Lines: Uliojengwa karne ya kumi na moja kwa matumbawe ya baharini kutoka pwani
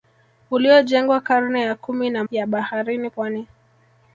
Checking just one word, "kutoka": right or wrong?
wrong